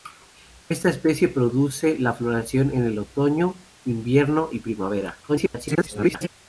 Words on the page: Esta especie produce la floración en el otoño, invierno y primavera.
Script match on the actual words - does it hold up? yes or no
no